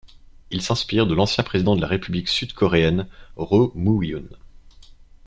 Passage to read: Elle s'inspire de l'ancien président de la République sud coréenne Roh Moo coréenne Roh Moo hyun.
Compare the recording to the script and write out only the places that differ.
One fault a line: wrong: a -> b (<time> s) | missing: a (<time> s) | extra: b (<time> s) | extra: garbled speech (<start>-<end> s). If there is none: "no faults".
wrong: Elle -> Il (0.5 s)
missing: coréenne Roh Moo (4.0 s)